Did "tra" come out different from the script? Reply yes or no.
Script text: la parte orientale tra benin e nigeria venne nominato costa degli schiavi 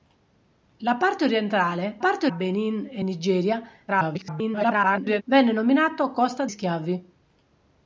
yes